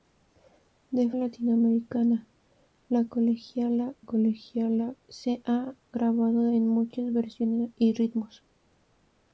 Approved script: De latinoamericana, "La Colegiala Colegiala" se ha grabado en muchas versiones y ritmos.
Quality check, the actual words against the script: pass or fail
pass